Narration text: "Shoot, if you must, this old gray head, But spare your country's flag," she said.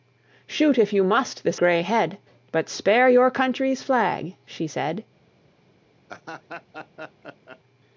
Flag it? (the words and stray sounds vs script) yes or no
yes